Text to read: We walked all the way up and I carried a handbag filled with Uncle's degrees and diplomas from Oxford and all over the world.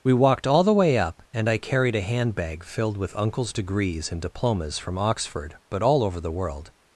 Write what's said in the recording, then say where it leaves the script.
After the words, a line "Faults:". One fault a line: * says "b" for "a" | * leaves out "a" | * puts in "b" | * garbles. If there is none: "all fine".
We walked all the way up and I carried a handbag filled with Uncle's degrees and diplomas from Oxford but all over the world.
Faults:
* says "but" for "and"